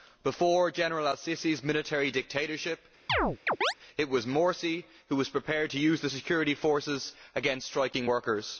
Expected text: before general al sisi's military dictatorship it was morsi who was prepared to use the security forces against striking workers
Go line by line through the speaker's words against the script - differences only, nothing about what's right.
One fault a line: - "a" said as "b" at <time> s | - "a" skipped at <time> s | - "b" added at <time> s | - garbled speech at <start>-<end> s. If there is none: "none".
none